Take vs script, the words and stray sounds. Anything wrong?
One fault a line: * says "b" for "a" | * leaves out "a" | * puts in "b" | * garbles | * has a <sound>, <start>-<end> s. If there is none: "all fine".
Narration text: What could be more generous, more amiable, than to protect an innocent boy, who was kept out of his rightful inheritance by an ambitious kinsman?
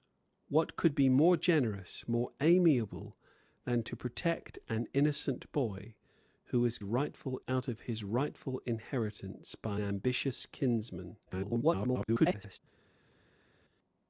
* says "rightful" for "kept"
* leaves out "an"
* garbles